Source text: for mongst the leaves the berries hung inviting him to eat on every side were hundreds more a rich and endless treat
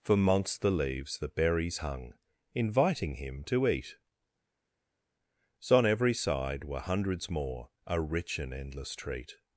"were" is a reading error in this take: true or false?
false